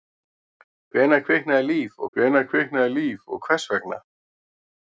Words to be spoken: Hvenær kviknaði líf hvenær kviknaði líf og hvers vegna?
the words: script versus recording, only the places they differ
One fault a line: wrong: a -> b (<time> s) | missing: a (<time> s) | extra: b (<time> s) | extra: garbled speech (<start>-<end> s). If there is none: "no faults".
no faults